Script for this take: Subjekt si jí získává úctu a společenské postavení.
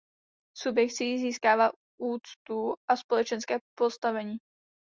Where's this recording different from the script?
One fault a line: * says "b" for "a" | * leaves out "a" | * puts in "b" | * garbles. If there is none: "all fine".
all fine